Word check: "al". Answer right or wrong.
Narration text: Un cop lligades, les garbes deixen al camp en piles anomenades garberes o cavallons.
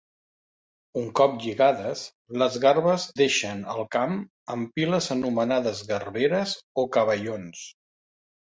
right